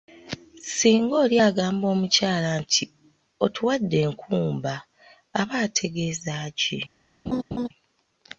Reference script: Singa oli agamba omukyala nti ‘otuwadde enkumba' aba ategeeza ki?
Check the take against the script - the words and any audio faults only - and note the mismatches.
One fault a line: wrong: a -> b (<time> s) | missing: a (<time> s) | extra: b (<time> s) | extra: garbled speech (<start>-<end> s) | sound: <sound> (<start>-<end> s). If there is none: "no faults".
sound: laugh (7.3-7.7 s)